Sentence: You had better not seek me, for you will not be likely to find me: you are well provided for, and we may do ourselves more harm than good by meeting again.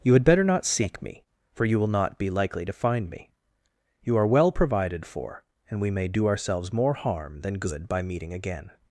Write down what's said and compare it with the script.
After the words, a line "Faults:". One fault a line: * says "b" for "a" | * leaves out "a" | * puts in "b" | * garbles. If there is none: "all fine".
You had better not seek me, for you will not be likely to find me: you are well provided for, and we may do ourselves more harm than good by meeting again.
Faults:
all fine